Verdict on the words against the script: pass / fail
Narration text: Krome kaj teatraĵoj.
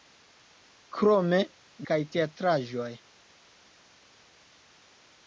pass